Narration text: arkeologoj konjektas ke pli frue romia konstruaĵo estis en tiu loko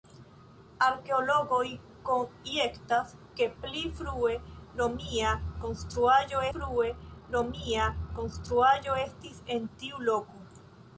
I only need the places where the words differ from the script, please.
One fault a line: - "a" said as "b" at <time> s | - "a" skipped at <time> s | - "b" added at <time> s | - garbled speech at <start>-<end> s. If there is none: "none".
- "frue romia konstruaĵo" added at 6.5 s